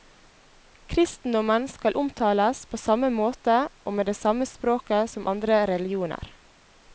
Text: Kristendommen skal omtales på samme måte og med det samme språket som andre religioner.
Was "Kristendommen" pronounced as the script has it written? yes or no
yes